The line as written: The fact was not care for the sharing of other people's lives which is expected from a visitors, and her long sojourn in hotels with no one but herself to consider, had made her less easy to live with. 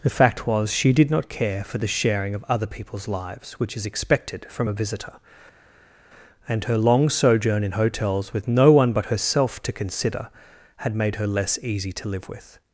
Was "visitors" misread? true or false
true